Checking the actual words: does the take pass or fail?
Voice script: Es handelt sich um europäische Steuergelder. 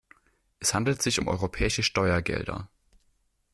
pass